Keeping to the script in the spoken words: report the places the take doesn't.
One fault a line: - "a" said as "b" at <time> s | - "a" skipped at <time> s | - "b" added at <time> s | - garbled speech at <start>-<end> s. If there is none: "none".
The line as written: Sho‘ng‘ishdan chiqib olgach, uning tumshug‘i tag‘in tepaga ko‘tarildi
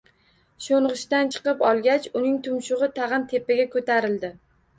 none